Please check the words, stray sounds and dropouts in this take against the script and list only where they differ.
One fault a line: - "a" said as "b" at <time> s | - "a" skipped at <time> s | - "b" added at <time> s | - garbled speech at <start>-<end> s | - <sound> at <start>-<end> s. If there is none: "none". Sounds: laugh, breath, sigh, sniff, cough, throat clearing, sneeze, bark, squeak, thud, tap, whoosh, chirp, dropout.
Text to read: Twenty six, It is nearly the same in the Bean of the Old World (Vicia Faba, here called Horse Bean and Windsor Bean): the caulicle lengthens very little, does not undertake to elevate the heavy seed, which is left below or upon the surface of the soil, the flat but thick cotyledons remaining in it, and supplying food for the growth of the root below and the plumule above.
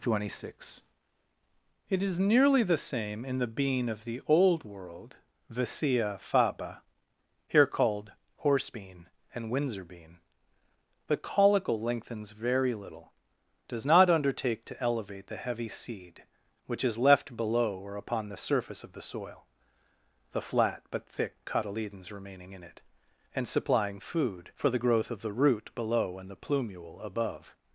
none